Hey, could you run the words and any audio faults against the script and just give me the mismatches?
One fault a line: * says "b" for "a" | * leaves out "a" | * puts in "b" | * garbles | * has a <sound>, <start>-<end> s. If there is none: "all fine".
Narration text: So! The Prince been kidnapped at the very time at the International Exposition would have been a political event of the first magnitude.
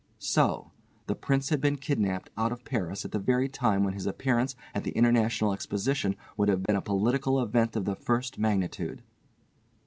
* puts in "had"
* puts in "out of Paris"
* puts in "when his appearance"
* has a dropout, 6.7-6.7 s